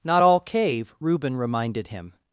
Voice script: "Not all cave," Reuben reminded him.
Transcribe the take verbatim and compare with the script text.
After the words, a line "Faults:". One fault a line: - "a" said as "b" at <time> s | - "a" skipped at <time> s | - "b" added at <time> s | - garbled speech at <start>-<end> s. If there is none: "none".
"Not all cave," Reuben reminded him.
Faults:
none